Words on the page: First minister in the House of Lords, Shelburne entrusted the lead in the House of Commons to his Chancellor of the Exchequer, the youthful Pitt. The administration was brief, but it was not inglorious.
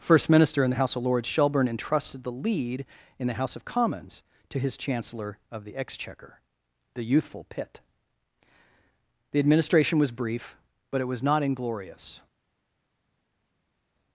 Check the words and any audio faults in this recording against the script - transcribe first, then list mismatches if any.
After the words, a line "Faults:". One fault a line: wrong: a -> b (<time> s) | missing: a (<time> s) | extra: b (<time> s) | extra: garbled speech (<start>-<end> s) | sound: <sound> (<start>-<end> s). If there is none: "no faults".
First minister in the House of Lords, Shelburne entrusted the lead in the House of Commons to his Chancellor of the Exchequer, the youthful Pitt. The administration was brief, but it was not inglorious.
Faults:
no faults